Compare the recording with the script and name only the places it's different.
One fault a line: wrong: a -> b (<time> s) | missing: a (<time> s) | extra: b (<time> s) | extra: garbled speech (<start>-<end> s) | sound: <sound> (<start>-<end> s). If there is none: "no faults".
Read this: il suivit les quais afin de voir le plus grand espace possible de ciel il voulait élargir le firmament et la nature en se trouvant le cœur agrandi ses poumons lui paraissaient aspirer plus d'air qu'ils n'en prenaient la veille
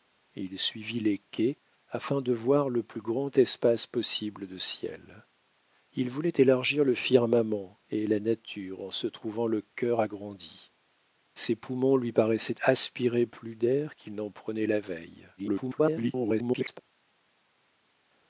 extra: garbled speech (15.4-16.8 s)